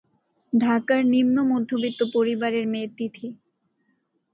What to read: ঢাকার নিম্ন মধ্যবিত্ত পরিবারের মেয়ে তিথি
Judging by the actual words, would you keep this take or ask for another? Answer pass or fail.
pass